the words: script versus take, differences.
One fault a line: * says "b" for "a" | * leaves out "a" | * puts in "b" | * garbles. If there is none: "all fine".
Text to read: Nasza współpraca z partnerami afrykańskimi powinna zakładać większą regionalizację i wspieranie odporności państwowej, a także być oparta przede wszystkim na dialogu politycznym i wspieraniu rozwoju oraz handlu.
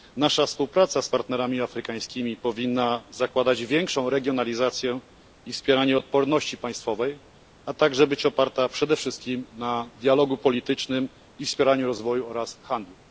all fine